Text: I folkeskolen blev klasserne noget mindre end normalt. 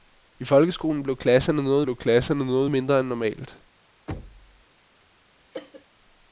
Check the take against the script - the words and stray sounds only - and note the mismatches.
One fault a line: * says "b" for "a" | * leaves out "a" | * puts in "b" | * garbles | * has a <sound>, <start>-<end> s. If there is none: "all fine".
* puts in "blev klasserne noget"
* has a thud, 4.1-4.6 s
* has a cough, 5.5-5.9 s